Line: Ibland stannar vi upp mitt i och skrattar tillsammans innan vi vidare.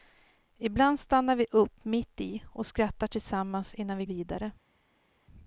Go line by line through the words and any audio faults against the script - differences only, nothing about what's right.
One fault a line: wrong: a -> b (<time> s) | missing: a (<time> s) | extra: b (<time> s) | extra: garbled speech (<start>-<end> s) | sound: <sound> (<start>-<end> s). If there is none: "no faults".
no faults